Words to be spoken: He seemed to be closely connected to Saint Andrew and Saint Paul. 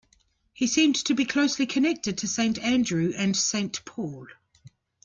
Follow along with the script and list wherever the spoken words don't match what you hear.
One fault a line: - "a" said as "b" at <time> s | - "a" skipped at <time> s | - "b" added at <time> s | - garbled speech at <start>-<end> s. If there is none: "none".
none